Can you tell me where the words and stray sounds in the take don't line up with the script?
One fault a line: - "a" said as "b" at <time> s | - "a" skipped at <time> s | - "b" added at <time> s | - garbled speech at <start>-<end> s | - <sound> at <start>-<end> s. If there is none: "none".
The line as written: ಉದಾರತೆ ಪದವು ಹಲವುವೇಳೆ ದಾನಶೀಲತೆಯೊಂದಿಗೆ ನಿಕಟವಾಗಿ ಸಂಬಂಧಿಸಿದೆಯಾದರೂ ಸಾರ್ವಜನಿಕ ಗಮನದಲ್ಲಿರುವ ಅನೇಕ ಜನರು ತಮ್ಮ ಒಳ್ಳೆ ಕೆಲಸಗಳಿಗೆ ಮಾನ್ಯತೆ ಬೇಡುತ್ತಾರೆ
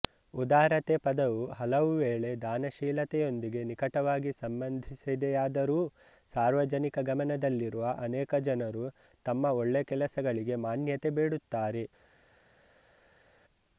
none